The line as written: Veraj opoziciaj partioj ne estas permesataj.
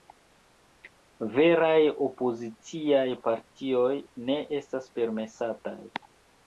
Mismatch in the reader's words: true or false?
false